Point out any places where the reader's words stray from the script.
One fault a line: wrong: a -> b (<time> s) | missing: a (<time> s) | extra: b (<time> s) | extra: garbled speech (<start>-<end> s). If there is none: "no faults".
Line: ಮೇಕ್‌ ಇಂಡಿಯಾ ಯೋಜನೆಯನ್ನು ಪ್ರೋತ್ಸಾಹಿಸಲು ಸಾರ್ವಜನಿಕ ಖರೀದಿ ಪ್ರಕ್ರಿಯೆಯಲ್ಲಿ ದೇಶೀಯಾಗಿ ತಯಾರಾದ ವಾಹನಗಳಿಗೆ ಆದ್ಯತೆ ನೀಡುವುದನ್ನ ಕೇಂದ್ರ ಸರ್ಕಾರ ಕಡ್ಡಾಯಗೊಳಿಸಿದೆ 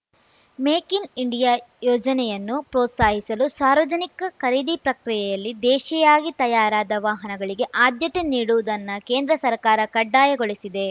extra: ಇನ್ (0.9 s)